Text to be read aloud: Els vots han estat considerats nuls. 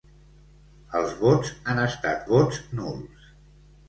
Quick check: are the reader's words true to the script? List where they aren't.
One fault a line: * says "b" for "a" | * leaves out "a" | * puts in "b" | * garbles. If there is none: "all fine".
* says "vots" for "considerats"